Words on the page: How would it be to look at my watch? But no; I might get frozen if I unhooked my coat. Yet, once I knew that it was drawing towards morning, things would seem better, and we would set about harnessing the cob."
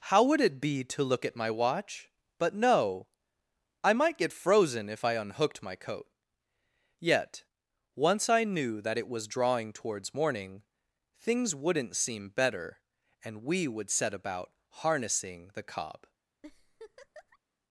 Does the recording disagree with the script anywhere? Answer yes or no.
yes